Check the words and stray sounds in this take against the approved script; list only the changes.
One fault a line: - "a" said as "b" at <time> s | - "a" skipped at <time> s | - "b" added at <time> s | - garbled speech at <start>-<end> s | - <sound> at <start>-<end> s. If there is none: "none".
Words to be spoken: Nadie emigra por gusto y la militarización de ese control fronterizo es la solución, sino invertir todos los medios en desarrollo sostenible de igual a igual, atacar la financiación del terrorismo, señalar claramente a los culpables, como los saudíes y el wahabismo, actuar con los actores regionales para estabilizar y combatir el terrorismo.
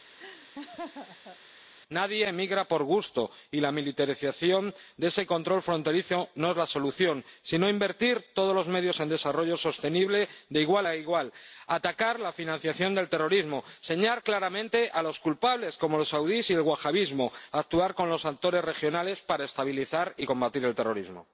- laugh at 0.2-1.4 s
- "no" added at 6.3 s